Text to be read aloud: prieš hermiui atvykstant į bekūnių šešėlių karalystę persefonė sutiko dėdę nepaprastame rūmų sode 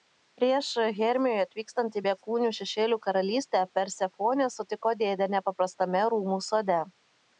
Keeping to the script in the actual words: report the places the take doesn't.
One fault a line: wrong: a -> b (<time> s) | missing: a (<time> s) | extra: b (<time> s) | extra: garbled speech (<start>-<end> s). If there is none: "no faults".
no faults